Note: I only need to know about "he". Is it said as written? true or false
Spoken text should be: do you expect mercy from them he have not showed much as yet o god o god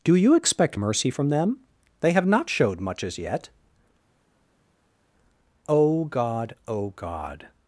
false